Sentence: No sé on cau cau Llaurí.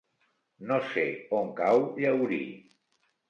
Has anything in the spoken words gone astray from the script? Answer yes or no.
yes